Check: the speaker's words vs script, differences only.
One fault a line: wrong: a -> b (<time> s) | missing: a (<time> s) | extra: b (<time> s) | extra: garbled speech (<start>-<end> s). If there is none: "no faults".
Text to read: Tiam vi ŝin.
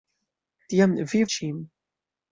no faults